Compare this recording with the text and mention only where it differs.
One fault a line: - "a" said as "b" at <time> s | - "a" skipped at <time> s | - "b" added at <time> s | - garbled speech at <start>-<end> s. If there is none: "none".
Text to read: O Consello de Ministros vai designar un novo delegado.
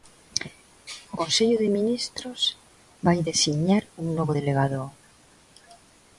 none